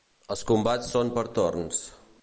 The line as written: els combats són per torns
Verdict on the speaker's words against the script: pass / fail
pass